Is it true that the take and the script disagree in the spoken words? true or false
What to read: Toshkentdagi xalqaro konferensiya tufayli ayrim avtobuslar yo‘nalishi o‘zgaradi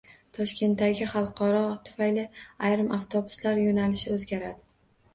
true